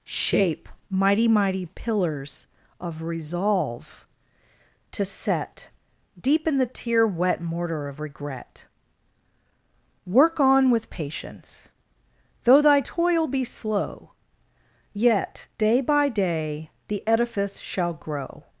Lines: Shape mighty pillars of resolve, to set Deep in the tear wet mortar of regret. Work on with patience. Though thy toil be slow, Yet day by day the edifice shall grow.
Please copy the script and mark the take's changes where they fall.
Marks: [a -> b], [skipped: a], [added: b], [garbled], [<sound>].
Shape mighty [added: mighty] pillars of resolve, to set Deep in the tear wet mortar of regret. Work on with patience. Though thy toil be slow, Yet day by day the edifice shall grow.